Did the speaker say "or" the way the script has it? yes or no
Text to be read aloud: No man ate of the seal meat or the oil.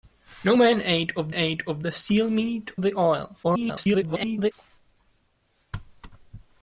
no